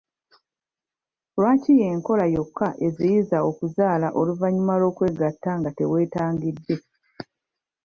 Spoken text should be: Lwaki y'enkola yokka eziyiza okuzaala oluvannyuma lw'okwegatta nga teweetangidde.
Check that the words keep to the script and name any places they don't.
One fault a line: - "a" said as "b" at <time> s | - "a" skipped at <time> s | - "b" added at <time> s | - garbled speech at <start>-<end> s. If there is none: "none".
none